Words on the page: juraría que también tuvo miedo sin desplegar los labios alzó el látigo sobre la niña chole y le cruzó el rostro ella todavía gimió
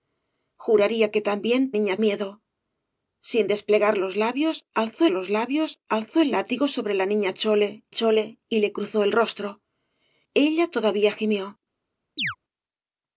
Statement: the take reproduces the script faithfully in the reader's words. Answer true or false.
false